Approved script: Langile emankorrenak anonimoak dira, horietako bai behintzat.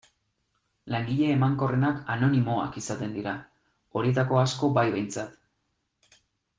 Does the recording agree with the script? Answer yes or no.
no